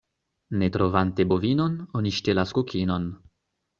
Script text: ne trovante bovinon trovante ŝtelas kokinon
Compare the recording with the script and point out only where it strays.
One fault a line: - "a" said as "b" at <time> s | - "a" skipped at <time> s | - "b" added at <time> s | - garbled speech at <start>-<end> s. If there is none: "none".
- "trovante" said as "oni" at 2.0 s